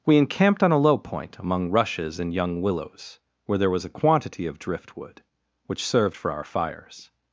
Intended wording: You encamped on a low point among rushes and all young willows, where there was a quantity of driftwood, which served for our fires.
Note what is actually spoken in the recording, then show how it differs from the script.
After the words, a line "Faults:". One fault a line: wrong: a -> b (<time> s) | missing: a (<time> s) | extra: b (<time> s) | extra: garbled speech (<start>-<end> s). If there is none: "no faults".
We encamped on a low point among rushes and young willows, where there was a quantity of driftwood, which served for our fires.
Faults:
wrong: You -> We (0.1 s)
missing: all (2.3 s)